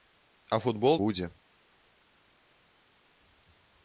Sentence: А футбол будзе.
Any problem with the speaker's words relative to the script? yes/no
no